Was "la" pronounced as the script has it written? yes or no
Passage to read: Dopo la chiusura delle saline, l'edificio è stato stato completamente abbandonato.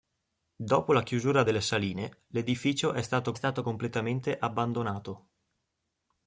yes